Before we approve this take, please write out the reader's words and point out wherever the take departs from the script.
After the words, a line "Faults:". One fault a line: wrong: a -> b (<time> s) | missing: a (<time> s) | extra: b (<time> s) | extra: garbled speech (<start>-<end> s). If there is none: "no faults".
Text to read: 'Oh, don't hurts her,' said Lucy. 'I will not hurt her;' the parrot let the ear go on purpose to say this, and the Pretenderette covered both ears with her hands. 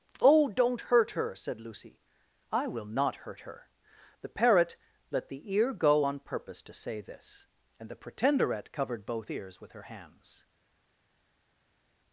'Oh, don't hurt her,' said Lucy. 'I will not hurt her;' the parrot let the ear go on purpose to say this, and the Pretenderette covered both ears with her hands.
Faults:
wrong: hurts -> hurt (0.8 s)